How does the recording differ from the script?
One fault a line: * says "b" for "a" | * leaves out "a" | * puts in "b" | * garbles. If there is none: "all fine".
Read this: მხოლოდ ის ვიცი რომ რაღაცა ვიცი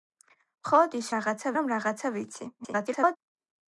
* says "რაღაცა" for "ვიცი"
* garbles